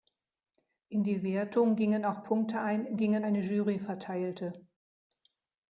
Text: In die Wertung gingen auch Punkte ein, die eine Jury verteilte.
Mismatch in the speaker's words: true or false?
true